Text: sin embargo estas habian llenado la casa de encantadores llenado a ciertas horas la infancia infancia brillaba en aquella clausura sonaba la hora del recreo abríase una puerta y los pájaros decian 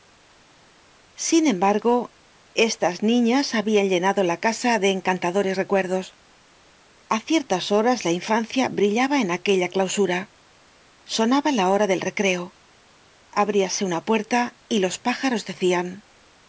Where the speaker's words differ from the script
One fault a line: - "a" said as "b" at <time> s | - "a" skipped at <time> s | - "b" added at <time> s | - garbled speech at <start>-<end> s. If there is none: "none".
- "niñas" added at 3.0 s
- "llenado" said as "recuerdos" at 5.6 s
- "infancia" skipped at 8.7 s